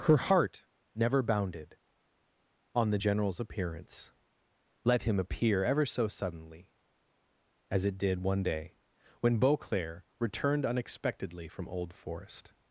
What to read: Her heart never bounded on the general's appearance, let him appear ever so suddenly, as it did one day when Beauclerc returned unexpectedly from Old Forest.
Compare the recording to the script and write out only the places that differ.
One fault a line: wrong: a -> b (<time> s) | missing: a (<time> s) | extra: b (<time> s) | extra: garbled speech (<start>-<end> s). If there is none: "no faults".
no faults